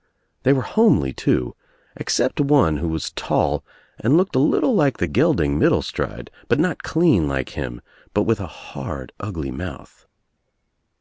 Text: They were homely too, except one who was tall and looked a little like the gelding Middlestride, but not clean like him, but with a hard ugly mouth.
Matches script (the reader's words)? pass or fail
pass